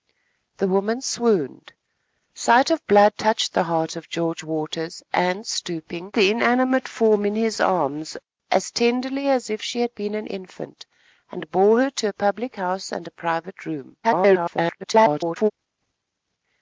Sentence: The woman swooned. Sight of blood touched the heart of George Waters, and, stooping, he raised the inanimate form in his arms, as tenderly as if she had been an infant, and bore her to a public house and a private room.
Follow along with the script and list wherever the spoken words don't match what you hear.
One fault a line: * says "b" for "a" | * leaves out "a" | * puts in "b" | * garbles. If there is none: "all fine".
* leaves out "he raised"
* garbles